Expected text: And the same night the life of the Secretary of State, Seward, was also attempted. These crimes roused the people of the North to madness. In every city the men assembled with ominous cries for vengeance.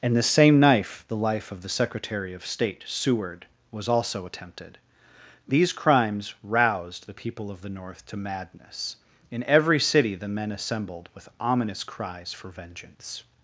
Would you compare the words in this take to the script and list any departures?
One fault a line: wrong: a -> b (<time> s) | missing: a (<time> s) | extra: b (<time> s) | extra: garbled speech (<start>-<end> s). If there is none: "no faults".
wrong: night -> knife (0.6 s)